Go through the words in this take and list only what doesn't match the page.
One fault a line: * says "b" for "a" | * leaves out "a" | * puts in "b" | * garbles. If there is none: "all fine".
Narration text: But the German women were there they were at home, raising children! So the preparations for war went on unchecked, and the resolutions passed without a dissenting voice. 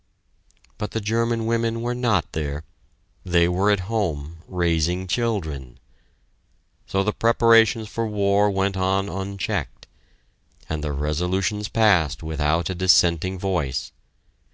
* puts in "not"